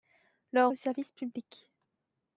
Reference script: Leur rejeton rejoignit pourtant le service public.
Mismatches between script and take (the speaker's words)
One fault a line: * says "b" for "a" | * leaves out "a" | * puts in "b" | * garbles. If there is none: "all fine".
* leaves out "rejeton rejoignit pourtant"